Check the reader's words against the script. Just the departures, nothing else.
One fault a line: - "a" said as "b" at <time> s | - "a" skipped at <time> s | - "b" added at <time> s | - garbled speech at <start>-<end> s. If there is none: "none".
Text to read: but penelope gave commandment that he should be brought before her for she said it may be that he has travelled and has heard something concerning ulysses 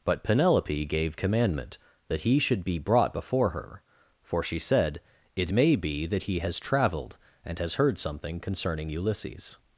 none